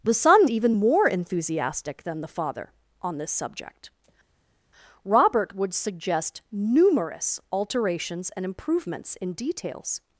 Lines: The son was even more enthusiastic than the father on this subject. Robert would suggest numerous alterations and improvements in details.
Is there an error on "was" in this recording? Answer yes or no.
yes